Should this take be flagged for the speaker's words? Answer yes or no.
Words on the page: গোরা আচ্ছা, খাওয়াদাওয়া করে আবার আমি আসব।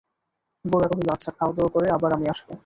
yes